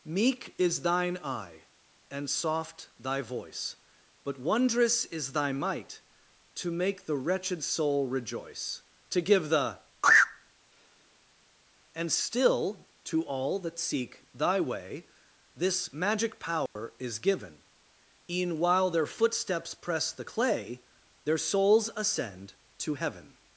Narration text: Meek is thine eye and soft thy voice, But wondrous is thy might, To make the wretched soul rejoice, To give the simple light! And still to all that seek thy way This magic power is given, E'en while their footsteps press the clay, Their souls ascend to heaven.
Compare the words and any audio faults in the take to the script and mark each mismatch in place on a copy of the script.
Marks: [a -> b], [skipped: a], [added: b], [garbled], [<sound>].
Meek is thine eye and soft thy voice, But wondrous is thy might, To make the wretched soul rejoice, To give the [skipped: simple light!] And still to all that seek thy way This magic power [dropout] is given, E'en while their footsteps press the clay, Their souls ascend to heaven.